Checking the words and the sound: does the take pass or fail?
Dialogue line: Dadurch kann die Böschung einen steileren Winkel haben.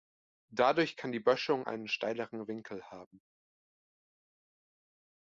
pass